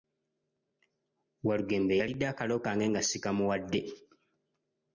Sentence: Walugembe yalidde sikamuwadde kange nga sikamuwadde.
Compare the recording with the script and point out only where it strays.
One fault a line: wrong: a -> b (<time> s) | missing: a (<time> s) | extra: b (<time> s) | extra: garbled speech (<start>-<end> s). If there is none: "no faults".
wrong: sikamuwadde -> akalo (2.3 s)